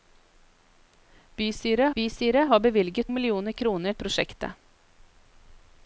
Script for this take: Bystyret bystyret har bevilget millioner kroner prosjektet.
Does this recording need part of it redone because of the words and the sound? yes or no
no